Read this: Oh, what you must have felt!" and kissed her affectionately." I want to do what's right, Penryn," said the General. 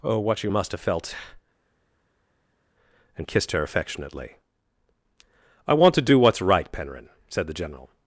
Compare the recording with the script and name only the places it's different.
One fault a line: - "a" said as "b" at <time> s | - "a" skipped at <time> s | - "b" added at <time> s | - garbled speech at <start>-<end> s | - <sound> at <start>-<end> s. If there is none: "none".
none